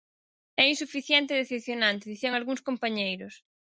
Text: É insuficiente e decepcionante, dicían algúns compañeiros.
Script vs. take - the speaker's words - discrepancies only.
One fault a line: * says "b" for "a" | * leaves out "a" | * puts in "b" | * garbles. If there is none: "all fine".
all fine